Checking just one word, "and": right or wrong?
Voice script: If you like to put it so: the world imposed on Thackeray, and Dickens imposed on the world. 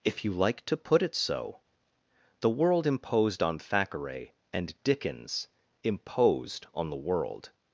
right